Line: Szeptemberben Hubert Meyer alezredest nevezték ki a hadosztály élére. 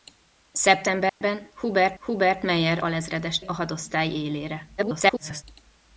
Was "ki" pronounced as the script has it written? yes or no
no